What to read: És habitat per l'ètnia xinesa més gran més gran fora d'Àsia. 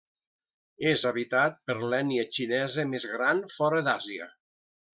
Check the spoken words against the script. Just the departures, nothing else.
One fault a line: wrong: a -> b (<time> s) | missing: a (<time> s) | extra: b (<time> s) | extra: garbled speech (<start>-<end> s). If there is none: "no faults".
missing: més gran (3.4 s)